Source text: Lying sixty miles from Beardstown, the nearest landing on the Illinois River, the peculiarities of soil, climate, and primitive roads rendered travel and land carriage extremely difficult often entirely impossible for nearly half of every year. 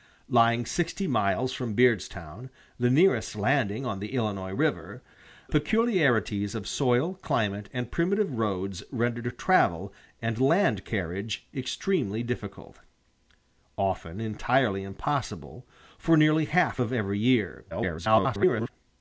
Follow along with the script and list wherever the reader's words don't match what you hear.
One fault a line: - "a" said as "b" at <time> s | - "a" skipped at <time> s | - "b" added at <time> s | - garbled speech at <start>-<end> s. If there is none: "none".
- "the" skipped at 5.0 s
- garbled speech at 17.7-18.7 s